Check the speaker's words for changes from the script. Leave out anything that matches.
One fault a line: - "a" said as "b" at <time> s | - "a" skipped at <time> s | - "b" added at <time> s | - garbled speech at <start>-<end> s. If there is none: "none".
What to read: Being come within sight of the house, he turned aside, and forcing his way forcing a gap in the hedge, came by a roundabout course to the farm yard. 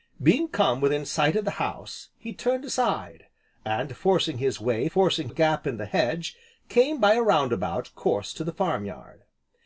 none